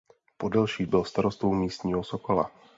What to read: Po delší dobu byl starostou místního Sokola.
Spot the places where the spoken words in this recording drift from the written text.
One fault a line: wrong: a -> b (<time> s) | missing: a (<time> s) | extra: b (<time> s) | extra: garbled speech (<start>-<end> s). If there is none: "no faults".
missing: dobu (0.8 s)